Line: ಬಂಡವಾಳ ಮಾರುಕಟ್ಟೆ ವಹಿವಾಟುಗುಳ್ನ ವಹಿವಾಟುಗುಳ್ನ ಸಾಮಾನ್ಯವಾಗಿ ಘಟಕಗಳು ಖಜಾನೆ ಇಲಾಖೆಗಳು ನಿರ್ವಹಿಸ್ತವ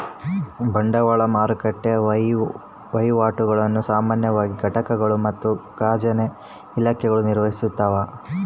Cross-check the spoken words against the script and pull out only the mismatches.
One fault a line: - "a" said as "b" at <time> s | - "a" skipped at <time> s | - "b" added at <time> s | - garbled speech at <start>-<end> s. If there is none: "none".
- "ವಹಿವಾಟುಗುಳ್ನ" skipped at 3.8 s
- "ಮತ್ತು" added at 5.3 s